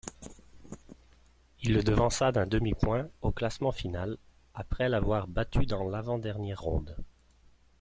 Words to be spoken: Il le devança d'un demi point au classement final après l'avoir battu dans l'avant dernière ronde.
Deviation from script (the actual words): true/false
false